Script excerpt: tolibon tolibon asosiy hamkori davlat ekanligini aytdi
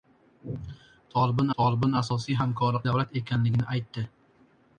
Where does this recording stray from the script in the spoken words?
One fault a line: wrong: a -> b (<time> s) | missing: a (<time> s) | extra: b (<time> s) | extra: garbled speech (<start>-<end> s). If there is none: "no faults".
no faults